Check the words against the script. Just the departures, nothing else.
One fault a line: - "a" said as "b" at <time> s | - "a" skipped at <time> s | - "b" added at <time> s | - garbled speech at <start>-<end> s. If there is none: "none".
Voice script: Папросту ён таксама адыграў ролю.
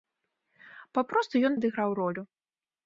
- "таксама" skipped at 1.6 s